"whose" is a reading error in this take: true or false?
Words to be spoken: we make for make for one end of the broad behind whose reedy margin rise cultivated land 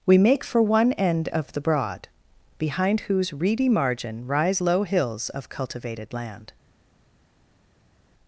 false